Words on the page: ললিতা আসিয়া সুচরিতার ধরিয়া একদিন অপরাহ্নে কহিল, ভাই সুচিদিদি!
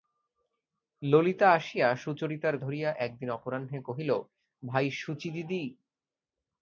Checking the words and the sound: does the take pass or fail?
pass